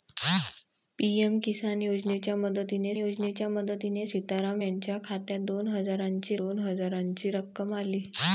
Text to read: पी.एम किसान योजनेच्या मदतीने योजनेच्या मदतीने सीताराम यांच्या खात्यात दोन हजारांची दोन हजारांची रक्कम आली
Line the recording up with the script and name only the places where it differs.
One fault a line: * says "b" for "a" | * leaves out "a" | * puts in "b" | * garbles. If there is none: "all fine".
all fine